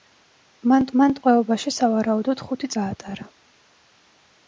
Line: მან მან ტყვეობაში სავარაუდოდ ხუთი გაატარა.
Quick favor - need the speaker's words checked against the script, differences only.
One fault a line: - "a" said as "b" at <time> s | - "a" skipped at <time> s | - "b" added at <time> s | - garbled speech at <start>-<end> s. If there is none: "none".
none